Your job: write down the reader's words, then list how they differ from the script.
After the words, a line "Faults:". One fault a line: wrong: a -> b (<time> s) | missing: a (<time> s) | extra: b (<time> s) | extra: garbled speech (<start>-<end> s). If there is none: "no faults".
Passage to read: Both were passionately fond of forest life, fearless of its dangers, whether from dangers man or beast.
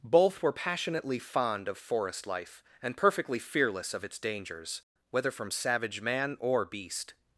Both were passionately fond of forest life, and perfectly fearless of its dangers, whether from savage man or beast.
Faults:
extra: and perfectly (2.8 s)
wrong: dangers -> savage (5.5 s)